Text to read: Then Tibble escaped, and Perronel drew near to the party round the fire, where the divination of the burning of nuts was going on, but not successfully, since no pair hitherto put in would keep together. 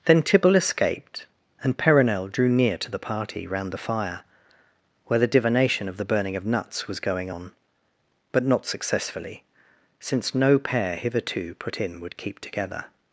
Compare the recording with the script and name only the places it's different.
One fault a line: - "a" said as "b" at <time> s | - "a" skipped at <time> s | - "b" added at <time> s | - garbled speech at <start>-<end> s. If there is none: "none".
none